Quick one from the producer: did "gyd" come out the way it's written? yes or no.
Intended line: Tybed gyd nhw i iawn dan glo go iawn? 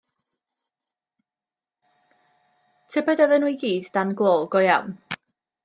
no